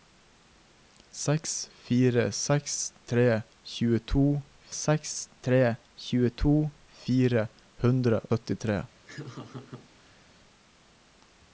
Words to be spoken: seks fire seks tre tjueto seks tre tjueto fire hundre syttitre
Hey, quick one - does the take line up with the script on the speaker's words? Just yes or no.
yes